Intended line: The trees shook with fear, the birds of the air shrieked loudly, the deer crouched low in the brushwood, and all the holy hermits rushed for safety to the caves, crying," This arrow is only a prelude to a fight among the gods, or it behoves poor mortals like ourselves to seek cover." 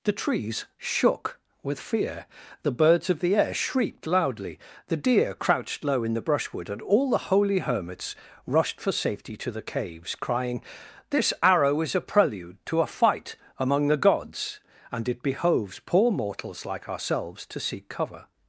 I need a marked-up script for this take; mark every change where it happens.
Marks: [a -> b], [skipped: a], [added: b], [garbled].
The trees shook with fear, the birds of the air shrieked loudly, the deer crouched low in the brushwood, and all the holy hermits rushed for safety to the caves, crying," This arrow is [skipped: only] a prelude to a fight among the gods, [or -> and] it behoves poor mortals like ourselves to seek cover."